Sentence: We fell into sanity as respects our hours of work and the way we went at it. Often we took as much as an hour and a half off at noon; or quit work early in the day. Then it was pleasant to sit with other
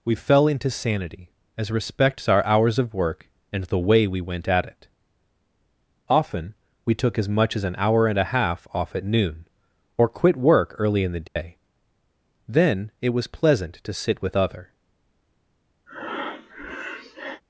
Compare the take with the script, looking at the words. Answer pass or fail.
pass